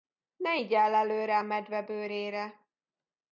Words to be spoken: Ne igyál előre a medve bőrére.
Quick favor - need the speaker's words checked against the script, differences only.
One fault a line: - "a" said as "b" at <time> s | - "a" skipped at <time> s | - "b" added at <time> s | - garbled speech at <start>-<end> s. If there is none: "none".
none